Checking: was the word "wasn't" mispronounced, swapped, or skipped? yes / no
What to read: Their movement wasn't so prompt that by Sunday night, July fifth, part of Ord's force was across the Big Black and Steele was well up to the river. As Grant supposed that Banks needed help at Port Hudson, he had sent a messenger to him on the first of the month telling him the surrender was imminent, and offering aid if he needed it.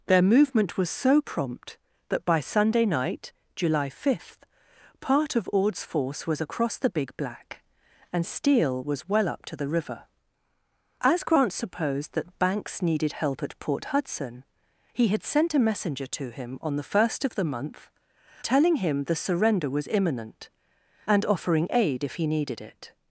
yes